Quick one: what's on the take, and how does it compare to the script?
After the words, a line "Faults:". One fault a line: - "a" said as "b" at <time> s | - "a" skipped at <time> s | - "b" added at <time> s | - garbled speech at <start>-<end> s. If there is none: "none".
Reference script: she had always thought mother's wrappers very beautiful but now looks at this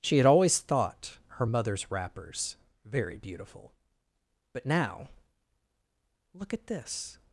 she had always thought her mother's wrappers very beautiful but now look at this
Faults:
- "her" added at 1.3 s
- "looks" said as "look" at 6.3 s